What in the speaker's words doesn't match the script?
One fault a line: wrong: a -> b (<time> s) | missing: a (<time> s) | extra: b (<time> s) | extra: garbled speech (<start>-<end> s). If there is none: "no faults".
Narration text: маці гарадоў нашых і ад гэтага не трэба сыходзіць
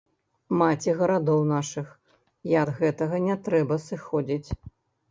no faults